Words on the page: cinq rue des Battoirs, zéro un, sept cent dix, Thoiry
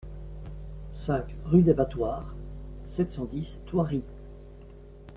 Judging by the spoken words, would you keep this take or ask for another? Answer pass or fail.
fail